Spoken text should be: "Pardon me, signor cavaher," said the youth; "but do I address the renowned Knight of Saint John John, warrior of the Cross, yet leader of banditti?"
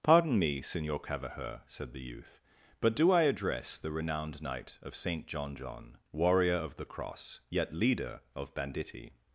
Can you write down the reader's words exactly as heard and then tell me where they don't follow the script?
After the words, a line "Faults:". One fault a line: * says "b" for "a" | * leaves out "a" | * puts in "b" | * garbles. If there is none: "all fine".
"Pardon me, signor cavaher," said the youth; "but do I address the renowned Knight of Saint John John, warrior of the Cross, yet leader of banditti?"
Faults:
all fine